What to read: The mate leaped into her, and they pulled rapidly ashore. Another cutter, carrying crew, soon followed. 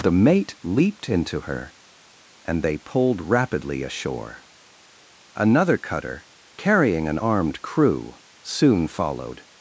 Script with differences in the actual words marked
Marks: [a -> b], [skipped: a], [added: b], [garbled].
The mate leaped into her, and they pulled rapidly ashore. Another cutter, carrying [added: an armed] crew, soon followed.